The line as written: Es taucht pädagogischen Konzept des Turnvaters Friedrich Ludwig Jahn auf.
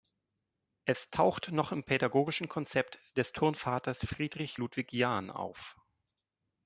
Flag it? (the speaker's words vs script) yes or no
yes